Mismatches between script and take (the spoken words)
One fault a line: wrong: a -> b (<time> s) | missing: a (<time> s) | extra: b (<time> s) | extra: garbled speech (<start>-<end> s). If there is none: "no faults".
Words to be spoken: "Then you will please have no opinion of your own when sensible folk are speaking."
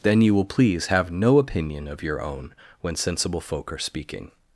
no faults